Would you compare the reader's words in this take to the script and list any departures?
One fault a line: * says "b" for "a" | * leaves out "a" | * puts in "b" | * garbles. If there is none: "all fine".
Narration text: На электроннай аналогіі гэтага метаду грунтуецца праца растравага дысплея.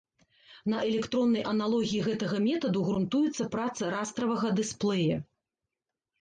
all fine